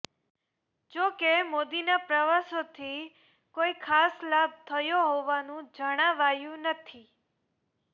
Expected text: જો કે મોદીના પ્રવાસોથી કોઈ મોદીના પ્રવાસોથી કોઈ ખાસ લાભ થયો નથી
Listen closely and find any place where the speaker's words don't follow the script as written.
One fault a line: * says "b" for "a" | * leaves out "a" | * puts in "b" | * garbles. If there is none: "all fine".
* leaves out "મોદીના પ્રવાસોથી કોઈ"
* puts in "હોવાનું જણાવાયું"